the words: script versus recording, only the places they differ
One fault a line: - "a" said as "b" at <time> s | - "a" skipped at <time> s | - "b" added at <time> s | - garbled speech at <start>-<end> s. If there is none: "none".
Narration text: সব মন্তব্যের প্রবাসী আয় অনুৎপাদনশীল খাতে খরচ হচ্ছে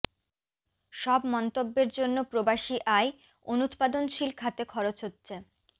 - "জন্য" added at 2.0 s